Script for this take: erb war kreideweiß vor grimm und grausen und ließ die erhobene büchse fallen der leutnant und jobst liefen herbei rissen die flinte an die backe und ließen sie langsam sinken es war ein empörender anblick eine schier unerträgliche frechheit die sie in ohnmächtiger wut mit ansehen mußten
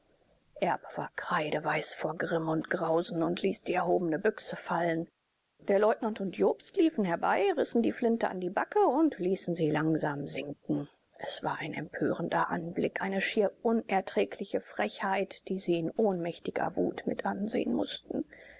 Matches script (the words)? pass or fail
pass